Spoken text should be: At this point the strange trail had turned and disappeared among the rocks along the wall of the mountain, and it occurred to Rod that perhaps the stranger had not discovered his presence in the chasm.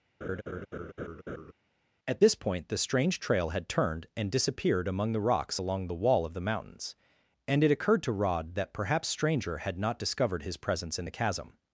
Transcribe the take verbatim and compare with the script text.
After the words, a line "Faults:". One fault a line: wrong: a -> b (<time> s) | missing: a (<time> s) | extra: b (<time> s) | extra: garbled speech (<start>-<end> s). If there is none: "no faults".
At this point the strange trail had turned and disappeared among the rocks along the wall of the mountains, and it occurred to Rod that perhaps stranger had not discovered his presence in the chasm.
Faults:
wrong: mountain -> mountains (6.4 s)
missing: the (9.1 s)